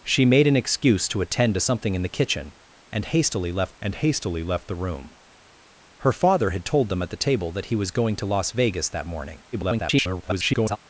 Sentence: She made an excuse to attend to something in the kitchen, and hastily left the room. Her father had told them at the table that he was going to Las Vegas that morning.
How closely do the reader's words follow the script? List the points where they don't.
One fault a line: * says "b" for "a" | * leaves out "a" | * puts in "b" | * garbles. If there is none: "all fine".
* puts in "and hastily left"
* garbles